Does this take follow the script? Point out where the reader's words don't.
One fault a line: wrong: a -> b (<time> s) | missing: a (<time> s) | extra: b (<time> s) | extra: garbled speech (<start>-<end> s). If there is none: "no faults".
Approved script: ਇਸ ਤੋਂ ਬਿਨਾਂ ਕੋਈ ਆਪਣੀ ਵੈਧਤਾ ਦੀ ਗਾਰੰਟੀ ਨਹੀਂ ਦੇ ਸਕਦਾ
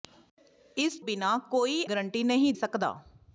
missing: ਤੋਂ (1.0 s)
missing: ਆਪਣੀ ਵੈਧਤਾ ਦੀ (1.8 s)
missing: ਦੇ (2.5 s)